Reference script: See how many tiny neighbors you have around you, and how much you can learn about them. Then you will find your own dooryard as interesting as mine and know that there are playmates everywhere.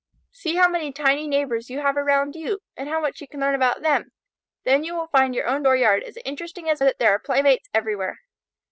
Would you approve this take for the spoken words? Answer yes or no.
no